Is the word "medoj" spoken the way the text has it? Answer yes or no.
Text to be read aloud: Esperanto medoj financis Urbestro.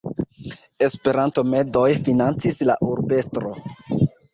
yes